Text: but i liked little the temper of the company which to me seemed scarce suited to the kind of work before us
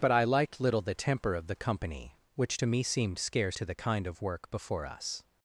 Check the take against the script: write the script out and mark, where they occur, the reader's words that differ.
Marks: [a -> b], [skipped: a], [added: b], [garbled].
but i liked little the temper of the company which to me seemed scarce [skipped: suited] to the kind of work before us